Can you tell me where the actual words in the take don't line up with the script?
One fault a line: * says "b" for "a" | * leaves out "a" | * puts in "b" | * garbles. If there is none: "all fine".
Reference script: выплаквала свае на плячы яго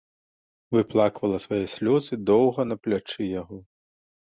* puts in "слёзы доўга"